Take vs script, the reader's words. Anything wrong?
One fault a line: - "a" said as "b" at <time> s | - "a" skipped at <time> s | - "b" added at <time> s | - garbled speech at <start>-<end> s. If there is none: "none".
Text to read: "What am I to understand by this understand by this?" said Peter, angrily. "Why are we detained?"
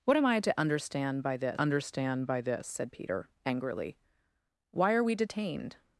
none